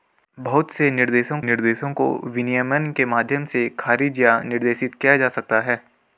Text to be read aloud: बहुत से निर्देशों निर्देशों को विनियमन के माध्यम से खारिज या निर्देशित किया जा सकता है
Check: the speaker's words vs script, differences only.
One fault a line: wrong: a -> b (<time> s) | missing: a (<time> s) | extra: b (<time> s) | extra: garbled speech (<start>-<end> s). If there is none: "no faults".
no faults